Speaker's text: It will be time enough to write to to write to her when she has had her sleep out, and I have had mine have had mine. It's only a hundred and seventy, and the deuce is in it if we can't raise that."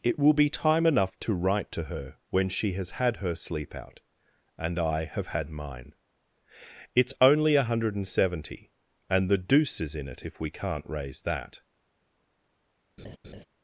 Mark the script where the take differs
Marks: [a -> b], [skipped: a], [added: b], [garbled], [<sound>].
It will be time enough to write to [skipped: to write to] her when she has had her sleep out, and I have had mine [skipped: have had mine.] It's only a hundred and seventy, and the deuce is in it if we can't raise that." [laugh]